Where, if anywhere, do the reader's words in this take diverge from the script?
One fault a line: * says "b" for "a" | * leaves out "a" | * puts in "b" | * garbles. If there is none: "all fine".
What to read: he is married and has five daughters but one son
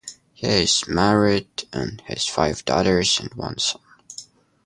* says "and" for "but"